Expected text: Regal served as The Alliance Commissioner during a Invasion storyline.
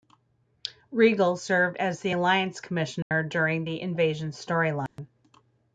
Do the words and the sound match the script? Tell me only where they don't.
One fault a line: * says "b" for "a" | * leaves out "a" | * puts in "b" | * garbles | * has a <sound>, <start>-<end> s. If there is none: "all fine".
* has a dropout, 3.0-3.1 s
* says "the" for "a"
* has a dropout, 4.9-5.0 s